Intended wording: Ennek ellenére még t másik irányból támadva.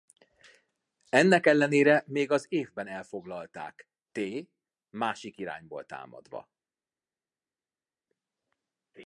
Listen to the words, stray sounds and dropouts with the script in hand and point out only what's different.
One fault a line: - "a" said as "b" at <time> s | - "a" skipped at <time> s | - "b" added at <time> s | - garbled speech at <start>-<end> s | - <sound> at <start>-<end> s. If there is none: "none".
- "az évben elfoglalták" added at 2.3 s